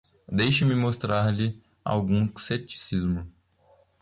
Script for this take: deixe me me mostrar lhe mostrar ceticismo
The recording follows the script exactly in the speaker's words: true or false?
false